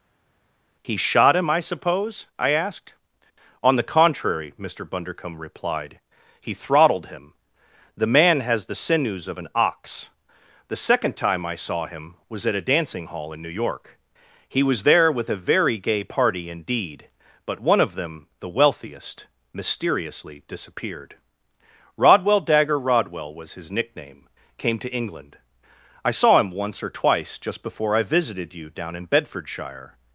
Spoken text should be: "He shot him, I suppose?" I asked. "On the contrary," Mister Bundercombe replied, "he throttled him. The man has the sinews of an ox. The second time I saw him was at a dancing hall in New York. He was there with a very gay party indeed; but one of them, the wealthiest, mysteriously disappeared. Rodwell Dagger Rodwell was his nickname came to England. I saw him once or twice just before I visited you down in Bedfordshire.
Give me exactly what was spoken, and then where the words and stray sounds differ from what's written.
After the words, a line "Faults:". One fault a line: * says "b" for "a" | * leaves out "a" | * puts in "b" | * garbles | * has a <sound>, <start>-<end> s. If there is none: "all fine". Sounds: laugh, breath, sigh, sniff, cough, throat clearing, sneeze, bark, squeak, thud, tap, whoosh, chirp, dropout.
"He shot him, I suppose?" I asked. "On the contrary," Mister Bundercombe replied, "he throttled him. The man has the sinews of an ox. The second time I saw him was at a dancing hall in New York. He was there with a very gay party indeed; but one of them, the wealthiest, mysteriously disappeared. Rodwell Dagger Rodwell was his nickname came to England. I saw him once or twice just before I visited you down in Bedfordshire.
Faults:
all fine